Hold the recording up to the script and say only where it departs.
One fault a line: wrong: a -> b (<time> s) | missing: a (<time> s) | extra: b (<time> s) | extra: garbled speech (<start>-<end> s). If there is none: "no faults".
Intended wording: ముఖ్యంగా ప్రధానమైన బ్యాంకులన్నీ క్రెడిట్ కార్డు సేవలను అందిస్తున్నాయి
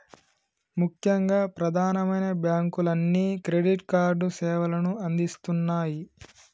no faults